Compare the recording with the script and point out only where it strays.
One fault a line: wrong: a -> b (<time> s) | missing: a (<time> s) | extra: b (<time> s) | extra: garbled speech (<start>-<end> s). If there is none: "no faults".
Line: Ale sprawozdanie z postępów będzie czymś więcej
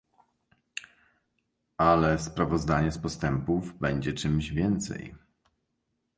no faults